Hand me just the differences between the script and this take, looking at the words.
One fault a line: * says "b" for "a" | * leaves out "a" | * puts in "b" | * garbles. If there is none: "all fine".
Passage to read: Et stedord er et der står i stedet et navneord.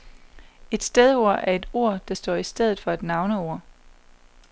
* puts in "ord"
* puts in "for"